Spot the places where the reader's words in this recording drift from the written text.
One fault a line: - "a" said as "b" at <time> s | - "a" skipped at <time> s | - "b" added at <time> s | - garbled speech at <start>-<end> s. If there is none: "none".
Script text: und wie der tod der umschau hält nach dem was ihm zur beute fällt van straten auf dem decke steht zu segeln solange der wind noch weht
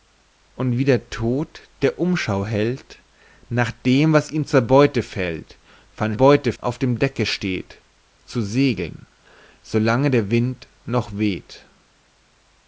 - "straten" said as "beute" at 6.1 s